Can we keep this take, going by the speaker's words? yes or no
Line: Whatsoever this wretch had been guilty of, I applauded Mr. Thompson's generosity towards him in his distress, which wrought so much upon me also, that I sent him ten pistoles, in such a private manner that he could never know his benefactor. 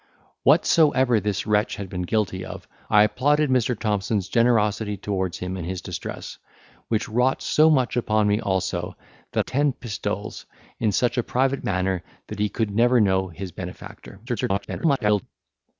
no